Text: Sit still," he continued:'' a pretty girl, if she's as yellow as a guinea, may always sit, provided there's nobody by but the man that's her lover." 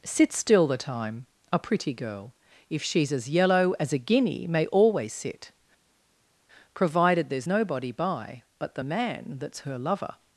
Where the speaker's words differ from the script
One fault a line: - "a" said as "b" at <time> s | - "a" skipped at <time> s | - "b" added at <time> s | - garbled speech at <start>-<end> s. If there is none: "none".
- "he continued" said as "the time" at 0.7 s